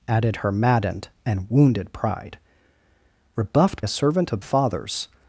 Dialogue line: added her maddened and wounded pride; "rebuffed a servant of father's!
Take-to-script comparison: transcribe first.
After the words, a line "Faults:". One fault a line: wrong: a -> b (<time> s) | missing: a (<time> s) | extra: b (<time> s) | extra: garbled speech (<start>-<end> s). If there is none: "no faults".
added her maddened and wounded pride; "rebuffed a servant of father's!
Faults:
no faults